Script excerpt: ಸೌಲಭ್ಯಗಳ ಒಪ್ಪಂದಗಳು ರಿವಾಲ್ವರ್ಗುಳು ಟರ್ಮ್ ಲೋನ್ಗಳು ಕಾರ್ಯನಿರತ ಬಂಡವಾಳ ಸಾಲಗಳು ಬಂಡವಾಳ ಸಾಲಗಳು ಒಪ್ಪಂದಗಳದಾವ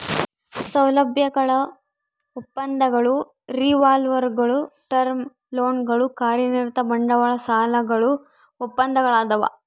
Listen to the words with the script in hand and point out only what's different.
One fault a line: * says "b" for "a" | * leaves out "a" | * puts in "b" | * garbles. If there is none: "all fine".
* leaves out "ಬಂಡವಾಳ ಸಾಲಗಳು"